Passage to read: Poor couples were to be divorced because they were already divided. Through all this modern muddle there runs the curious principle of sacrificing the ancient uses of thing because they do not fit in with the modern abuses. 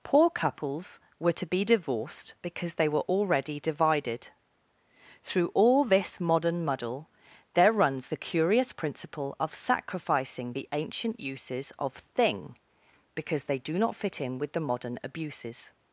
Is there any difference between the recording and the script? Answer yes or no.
no